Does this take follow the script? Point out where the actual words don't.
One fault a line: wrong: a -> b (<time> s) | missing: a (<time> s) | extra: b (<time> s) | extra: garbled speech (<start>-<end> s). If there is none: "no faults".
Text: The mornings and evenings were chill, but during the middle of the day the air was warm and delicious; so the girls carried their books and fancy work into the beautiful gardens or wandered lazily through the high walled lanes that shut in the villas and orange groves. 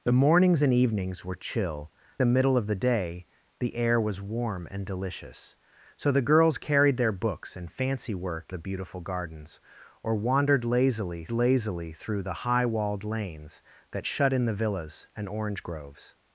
missing: but during (1.9 s)
missing: into (8.5 s)
extra: lazily (11.3 s)